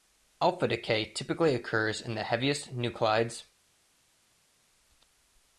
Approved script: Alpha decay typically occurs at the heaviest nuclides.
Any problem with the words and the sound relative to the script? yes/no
yes